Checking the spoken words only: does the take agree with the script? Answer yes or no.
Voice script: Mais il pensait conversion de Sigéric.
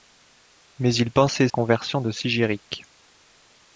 yes